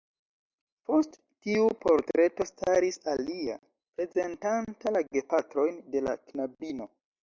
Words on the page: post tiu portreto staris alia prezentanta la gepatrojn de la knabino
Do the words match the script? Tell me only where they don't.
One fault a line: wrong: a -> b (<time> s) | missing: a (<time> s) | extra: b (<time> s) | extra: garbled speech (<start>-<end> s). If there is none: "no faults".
no faults